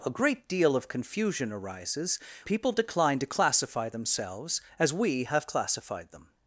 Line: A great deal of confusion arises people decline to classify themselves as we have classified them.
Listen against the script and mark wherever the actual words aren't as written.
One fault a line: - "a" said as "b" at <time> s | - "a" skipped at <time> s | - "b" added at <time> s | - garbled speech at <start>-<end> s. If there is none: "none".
none